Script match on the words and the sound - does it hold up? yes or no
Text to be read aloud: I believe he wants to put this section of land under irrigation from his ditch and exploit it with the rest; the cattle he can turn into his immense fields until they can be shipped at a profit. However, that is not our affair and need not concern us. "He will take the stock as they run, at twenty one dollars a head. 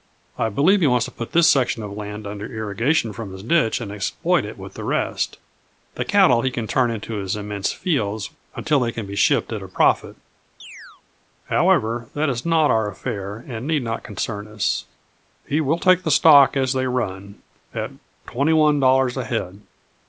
no